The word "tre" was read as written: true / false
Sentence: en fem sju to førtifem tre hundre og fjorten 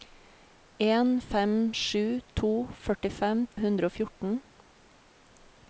false